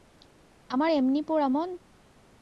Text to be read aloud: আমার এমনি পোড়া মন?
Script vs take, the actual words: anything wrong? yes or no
no